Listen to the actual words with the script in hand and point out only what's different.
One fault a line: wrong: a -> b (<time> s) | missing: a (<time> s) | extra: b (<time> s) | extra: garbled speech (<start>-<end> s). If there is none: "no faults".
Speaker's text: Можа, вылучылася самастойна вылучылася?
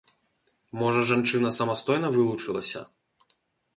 wrong: вылучылася -> жанчына (1.1 s)